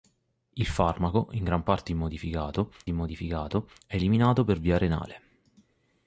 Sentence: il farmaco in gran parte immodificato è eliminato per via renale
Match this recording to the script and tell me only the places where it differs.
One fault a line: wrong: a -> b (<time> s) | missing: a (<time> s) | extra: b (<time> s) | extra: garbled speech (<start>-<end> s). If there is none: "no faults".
extra: immodificato (2.9 s)